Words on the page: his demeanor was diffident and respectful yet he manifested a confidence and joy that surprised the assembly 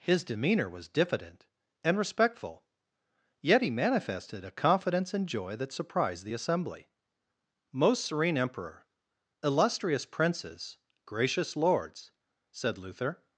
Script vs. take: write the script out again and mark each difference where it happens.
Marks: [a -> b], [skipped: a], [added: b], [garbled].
his demeanor was diffident and respectful yet he manifested a confidence and joy that surprised the assembly [added: most serene emperor illustrious princes gracious lords said luther]